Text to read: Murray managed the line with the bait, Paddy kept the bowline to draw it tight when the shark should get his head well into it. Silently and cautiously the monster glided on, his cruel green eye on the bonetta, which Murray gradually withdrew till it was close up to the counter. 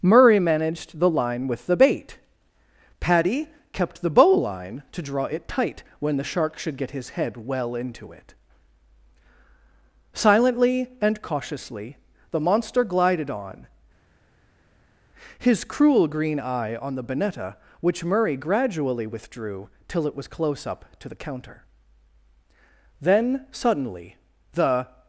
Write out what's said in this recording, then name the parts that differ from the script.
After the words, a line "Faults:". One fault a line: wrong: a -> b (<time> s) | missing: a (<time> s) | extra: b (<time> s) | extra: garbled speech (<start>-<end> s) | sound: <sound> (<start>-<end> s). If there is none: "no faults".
Murray managed the line with the bait, Paddy kept the bowline to draw it tight when the shark should get his head well into it. Silently and cautiously the monster glided on, his cruel green eye on the bonetta, which Murray gradually withdrew till it was close up to the counter. Then suddenly the
Faults:
extra: Then suddenly the (23.0 s)